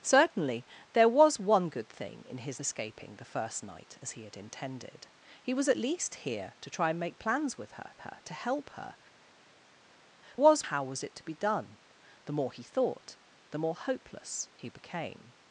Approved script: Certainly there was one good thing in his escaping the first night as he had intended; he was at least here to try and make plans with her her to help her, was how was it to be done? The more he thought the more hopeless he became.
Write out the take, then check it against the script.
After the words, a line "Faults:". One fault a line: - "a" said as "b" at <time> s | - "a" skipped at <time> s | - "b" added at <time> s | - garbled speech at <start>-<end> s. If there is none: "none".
Certainly there was one good thing in his escaping the first night as he had intended; he was at least here to try and make plans with her her to help her, was how was it to be done? The more he thought the more hopeless he became.
Faults:
none